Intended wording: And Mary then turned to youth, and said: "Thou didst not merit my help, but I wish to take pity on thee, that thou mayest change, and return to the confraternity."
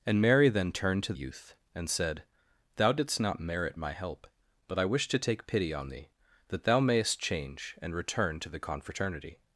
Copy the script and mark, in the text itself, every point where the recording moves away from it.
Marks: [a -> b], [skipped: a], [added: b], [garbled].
And Mary then turned to youth, and said: "Thou didst not merit my help, but I wish to take pity on thee, that thou mayest change, and return to the confraternity."